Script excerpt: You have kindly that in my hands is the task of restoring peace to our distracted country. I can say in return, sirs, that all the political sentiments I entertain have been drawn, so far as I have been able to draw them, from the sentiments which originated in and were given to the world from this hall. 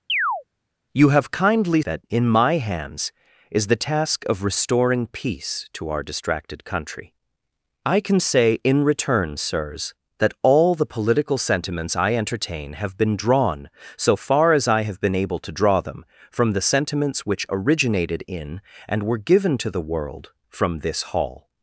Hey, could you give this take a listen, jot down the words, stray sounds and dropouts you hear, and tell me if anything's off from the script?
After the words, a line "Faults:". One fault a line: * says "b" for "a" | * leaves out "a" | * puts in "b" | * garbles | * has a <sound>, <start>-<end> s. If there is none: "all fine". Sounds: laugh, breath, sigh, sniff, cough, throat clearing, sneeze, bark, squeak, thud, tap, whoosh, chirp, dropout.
You have kindly that in my hands is the task of restoring peace to our distracted country. I can say in return, sirs, that all the political sentiments I entertain have been drawn, so far as I have been able to draw them, from the sentiments which originated in and were given to the world from this hall.
Faults:
* has a chirp, 0.1-0.4 s